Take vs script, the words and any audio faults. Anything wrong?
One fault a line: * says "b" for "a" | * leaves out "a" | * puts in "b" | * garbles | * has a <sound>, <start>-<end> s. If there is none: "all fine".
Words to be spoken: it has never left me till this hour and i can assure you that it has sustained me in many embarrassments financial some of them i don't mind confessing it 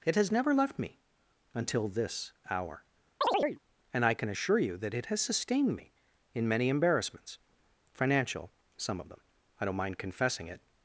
* says "until" for "till"
* has a chirp, 3.2-3.6 s